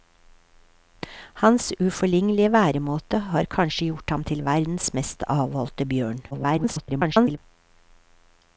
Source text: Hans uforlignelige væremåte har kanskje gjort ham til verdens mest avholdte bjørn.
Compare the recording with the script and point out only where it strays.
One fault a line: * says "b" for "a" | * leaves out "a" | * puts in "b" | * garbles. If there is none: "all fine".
* garbles